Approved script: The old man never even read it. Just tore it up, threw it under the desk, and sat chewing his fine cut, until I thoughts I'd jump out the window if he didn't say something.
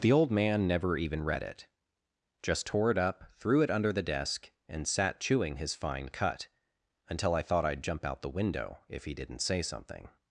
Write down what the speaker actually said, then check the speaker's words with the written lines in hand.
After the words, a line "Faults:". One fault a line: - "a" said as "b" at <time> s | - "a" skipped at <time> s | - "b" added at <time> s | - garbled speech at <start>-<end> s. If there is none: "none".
The old man never even read it. Just tore it up, threw it under the desk, and sat chewing his fine cut, until I thought I'd jump out the window if he didn't say something.
Faults:
- "thoughts" said as "thought" at 7.4 s